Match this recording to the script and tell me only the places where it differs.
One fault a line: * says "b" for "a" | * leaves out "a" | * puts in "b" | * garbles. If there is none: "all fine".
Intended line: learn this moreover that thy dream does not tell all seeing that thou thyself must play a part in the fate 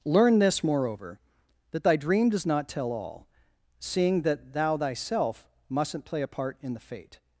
* says "mustn't" for "must"